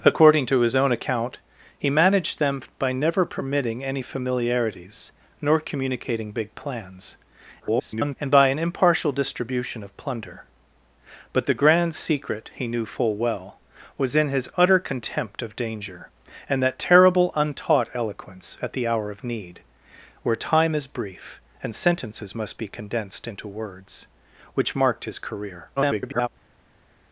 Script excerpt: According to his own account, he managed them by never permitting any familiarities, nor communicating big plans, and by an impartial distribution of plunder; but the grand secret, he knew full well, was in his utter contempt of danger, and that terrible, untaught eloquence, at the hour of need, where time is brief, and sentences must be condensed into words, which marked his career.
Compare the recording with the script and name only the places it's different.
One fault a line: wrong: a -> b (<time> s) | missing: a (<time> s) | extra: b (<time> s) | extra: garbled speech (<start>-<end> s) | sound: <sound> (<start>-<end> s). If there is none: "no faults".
extra: garbled speech (7.6-8.2 s)
extra: garbled speech (25.8-26.3 s)